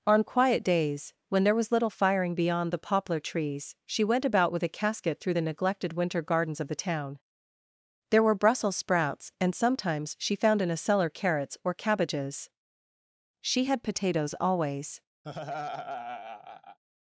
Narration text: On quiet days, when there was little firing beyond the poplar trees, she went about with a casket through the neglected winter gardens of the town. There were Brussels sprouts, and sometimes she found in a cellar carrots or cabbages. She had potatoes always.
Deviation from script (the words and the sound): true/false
true